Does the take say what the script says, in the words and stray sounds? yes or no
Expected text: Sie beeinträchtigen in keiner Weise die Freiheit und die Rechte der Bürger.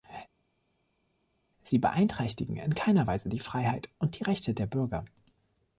yes